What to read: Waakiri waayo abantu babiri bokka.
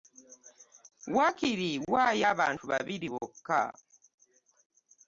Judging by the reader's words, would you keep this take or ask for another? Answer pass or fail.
pass